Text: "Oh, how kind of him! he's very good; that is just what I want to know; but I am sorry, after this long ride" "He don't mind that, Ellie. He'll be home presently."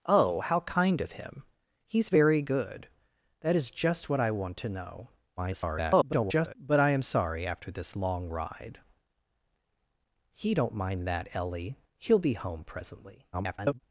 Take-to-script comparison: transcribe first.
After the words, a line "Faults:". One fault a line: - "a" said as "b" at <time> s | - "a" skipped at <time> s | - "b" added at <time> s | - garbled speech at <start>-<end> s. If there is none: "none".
"Oh, how kind of him! he's very good; that is just what I want to know; [garbled] but I am sorry, after this long ride" "He don't mind that, Ellie. He'll be home presently." [garbled]
Faults:
- garbled speech at 5.4-6.5 s
- garbled speech at 13.3-13.8 s